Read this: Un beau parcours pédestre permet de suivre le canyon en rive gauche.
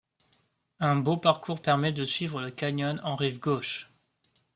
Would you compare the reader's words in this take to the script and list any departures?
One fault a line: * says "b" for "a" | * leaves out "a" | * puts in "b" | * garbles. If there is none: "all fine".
* leaves out "pédestre"